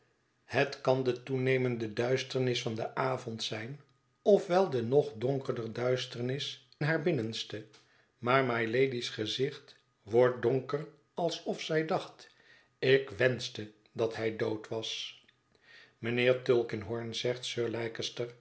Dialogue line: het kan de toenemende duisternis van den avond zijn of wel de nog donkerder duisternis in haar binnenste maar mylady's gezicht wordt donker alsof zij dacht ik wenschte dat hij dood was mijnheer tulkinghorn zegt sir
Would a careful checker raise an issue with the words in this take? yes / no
yes